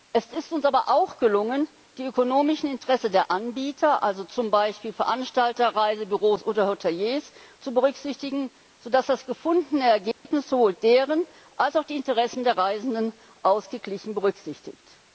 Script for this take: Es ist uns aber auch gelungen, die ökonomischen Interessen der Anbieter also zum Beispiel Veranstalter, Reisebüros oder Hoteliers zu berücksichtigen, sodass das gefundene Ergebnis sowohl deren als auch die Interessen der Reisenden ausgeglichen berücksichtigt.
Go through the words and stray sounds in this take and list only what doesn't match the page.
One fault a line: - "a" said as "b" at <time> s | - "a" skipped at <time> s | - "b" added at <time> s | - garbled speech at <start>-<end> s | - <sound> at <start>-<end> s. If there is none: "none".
- dropout at 10.1-10.3 s